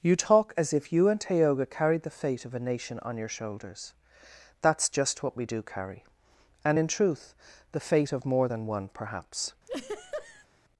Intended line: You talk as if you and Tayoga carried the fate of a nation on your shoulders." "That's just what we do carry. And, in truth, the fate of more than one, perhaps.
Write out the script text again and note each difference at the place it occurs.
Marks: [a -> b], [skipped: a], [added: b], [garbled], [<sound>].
You talk as if you and Tayoga carried the fate of a nation on your shoulders." "That's just what we do carry. And, in truth, the fate of more than one, perhaps. [laugh]